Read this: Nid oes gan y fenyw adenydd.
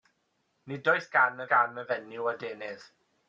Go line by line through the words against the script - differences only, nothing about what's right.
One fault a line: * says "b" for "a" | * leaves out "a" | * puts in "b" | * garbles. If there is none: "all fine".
* puts in "gan"